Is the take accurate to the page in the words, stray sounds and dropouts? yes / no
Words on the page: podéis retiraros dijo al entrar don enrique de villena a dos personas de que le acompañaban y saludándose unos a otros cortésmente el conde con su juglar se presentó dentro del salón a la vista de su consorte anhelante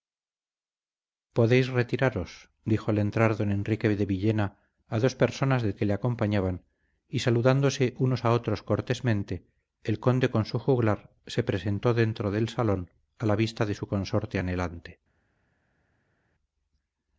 yes